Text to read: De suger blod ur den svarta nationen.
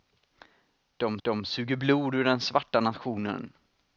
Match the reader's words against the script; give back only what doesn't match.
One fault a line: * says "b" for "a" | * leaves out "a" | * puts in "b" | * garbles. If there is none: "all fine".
* puts in "de"